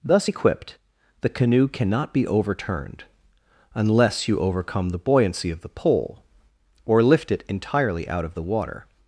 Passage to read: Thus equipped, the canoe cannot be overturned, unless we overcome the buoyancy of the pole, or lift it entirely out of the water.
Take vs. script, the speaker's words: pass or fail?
fail